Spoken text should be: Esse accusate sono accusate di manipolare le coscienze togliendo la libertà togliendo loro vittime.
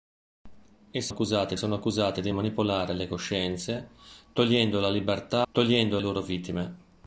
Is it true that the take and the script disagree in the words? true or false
false